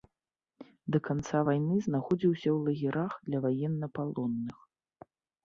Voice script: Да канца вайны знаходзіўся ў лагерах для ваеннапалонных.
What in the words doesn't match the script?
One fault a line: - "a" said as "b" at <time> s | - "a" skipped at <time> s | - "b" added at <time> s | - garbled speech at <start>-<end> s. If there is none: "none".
none